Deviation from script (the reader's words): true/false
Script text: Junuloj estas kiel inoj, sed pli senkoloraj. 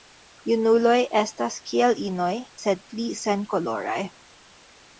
false